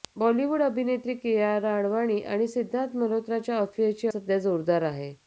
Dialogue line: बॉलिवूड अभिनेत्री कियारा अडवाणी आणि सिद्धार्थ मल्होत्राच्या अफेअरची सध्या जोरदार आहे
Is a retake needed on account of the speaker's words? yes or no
no